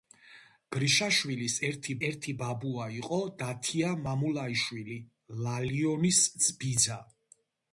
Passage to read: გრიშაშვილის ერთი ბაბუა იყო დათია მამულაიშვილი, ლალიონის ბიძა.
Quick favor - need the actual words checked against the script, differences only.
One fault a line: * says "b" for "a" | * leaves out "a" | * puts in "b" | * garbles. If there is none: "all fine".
* puts in "ერთი"